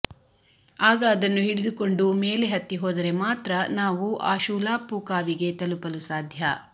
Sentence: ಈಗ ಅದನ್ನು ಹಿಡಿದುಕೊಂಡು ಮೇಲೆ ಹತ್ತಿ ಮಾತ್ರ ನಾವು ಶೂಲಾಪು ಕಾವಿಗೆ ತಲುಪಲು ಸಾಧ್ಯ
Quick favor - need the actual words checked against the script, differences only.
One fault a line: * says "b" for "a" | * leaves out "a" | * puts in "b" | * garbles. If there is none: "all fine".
* says "ಆಗ" for "ಈಗ"
* puts in "ಹೋದರೆ"
* puts in "ಆ"